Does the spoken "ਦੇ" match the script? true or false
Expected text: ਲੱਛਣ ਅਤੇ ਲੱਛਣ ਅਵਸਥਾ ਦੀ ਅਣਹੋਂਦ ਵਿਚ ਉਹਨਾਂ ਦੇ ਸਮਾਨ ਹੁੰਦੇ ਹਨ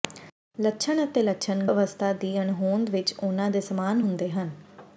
true